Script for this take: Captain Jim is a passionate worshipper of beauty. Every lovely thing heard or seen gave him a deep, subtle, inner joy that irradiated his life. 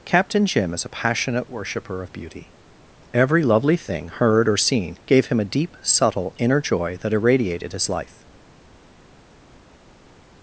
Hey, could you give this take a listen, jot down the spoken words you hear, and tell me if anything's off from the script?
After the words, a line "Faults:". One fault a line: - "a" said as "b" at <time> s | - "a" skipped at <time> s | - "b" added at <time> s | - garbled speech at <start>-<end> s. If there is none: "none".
Captain Jim is a passionate worshipper of beauty. Every lovely thing heard or seen gave him a deep, subtle, inner joy that irradiated his life.
Faults:
none